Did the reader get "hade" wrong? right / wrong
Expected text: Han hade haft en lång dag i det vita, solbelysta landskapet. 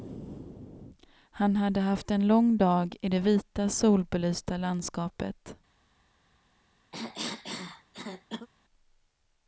right